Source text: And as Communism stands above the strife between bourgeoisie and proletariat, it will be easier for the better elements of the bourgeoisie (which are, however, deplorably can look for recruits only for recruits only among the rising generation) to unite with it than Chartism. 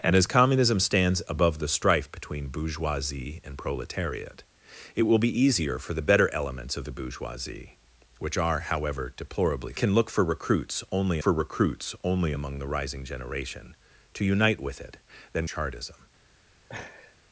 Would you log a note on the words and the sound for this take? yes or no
yes